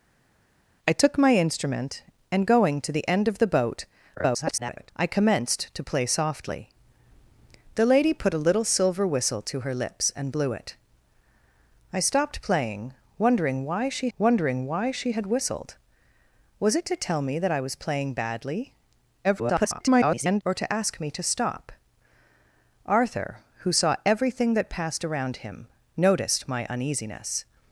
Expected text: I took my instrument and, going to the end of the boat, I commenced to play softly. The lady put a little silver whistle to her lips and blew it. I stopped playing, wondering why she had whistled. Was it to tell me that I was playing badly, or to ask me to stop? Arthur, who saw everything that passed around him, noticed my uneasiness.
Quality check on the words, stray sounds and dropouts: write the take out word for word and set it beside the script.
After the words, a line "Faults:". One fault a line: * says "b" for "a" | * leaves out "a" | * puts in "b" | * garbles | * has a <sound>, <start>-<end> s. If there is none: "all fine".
I took my instrument and, going to the end of the boat, [garbled] I commenced to play softly. The lady put a little silver whistle to her lips and blew it. I stopped playing, wondering why she wondering why she had whistled. Was it to tell me that I was playing badly, [garbled] or to ask me to stop? Arthur, who saw everything that passed around him, noticed my uneasiness.
Faults:
* garbles
* puts in "wondering why she"
* garbles